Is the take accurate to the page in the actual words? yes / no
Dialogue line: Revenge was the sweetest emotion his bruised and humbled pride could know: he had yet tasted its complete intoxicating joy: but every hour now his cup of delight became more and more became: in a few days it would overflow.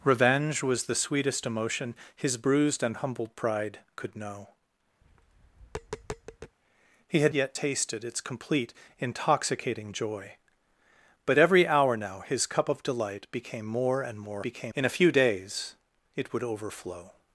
yes